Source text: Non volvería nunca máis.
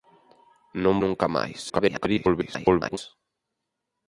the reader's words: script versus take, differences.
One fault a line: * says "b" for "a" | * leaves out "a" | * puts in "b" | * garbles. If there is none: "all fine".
* leaves out "volvería"
* garbles